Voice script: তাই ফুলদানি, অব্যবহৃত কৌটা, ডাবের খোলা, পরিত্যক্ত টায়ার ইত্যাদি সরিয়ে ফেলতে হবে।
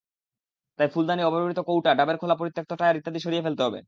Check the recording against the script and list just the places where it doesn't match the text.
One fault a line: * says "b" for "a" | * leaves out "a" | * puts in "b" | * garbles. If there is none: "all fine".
all fine